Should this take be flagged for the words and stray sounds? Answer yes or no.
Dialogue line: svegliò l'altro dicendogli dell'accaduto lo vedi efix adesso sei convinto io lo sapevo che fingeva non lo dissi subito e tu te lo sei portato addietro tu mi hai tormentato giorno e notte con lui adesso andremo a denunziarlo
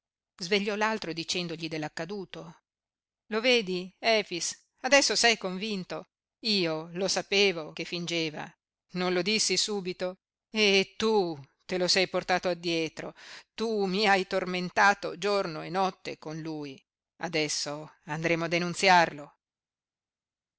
no